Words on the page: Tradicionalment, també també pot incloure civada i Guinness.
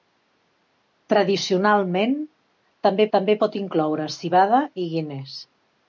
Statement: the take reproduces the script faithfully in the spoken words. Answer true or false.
true